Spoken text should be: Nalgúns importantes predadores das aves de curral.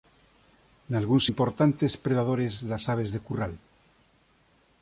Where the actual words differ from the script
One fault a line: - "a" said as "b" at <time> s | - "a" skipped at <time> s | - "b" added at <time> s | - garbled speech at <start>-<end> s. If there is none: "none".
none